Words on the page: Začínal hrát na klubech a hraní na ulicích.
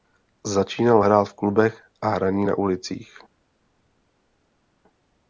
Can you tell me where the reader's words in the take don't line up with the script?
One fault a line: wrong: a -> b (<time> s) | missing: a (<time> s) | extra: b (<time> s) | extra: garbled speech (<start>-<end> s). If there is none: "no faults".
wrong: na -> v (1.2 s)